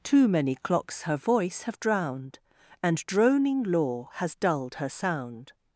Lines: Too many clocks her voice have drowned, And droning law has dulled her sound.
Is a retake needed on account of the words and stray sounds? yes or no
no